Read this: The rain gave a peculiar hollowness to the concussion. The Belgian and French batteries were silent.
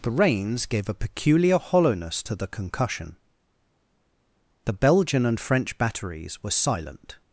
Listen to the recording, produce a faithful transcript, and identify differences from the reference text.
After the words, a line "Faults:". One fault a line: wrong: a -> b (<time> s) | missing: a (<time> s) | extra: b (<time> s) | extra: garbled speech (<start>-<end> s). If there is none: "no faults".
The rains gave a peculiar hollowness to the concussion. The Belgian and French batteries were silent.
Faults:
wrong: rain -> rains (0.1 s)